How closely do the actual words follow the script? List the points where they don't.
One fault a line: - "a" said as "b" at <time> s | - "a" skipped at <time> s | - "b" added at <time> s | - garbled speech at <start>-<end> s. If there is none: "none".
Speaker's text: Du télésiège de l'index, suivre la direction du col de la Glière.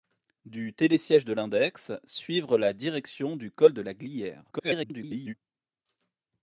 - garbled speech at 4.5-5.3 s